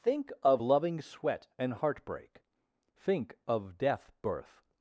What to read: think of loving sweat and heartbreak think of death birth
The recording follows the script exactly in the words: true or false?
true